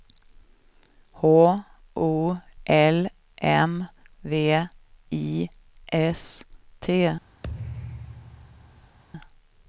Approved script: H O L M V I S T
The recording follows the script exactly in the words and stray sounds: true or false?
false